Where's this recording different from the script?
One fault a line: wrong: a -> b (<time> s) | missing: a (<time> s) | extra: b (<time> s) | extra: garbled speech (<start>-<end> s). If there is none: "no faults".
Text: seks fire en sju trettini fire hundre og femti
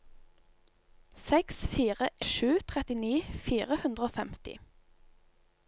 missing: en (2.1 s)